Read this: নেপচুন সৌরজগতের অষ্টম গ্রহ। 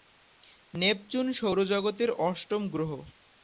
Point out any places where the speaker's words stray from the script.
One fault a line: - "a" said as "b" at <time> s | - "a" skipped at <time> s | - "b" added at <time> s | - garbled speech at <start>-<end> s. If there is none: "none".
none